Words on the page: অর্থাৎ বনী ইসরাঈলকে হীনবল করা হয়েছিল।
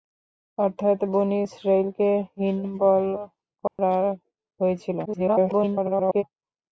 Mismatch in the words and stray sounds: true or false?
true